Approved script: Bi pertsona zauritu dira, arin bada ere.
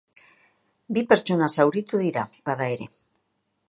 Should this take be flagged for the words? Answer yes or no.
yes